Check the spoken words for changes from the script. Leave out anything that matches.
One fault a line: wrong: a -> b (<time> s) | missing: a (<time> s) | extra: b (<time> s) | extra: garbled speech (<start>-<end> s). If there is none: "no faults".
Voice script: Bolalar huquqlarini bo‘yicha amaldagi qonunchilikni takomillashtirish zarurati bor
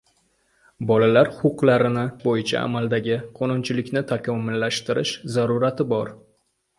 no faults